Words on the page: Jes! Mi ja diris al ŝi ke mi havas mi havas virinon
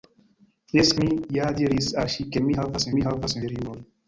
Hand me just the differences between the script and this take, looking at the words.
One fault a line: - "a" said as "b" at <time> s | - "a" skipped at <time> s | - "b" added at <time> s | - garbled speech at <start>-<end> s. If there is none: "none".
none